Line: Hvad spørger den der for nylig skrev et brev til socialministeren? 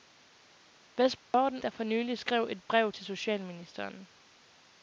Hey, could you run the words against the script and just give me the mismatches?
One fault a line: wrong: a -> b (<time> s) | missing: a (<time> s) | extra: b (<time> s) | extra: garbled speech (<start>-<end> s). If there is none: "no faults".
no faults